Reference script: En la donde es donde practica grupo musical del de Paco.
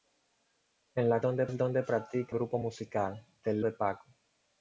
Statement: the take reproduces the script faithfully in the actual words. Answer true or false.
true